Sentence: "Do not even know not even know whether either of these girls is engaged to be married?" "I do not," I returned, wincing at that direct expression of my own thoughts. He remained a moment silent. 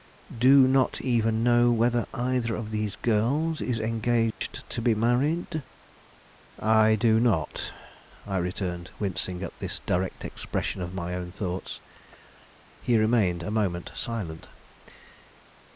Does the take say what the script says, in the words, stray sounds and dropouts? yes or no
no